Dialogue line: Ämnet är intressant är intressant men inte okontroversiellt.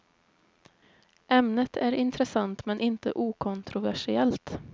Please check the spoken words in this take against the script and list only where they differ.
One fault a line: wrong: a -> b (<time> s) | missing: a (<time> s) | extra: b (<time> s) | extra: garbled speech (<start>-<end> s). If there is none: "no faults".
missing: är intressant (2.6 s)